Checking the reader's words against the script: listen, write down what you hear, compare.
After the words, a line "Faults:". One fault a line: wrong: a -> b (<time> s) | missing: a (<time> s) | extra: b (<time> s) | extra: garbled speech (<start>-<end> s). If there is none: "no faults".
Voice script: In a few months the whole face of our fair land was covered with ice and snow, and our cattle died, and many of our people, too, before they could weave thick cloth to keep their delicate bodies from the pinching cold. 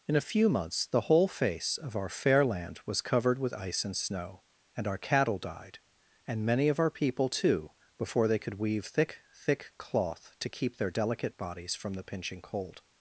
In a few months the whole face of our fair land was covered with ice and snow, and our cattle died, and many of our people, too, before they could weave thick thick cloth to keep their delicate bodies from the pinching cold.
Faults:
extra: thick (9.3 s)